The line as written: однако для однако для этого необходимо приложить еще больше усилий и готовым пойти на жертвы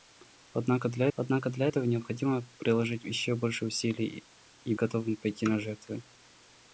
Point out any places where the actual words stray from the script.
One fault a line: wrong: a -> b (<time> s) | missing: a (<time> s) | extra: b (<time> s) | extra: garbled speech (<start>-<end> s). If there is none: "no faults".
no faults